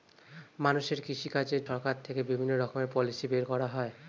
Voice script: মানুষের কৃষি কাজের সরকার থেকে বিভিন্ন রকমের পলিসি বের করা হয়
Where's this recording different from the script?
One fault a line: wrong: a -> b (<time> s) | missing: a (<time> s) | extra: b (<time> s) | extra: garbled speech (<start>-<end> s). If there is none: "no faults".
no faults